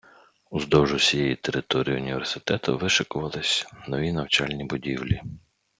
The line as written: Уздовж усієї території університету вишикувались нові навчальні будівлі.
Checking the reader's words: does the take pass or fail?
pass